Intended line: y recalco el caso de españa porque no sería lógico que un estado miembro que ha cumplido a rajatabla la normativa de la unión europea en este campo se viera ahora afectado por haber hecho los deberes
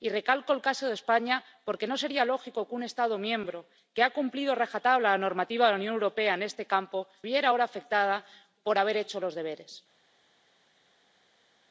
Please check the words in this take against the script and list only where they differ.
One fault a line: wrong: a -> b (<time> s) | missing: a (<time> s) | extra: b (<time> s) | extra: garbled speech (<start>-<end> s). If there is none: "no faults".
missing: se (7.1 s)